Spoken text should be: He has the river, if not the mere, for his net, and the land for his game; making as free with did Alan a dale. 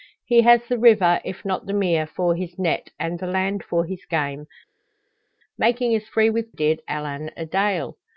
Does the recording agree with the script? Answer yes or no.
yes